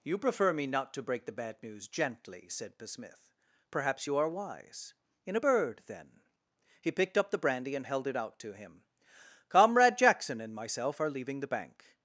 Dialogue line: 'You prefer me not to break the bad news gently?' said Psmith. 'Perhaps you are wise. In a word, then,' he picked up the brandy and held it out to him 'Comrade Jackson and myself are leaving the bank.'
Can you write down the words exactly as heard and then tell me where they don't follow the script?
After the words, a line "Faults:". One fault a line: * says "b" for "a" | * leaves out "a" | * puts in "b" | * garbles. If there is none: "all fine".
'You prefer me not to break the bad news gently?' said Psmith. 'Perhaps you are wise. In a bird, then,' he picked up the brandy and held it out to him 'Comrade Jackson and myself are leaving the bank.'
Faults:
* says "bird" for "word"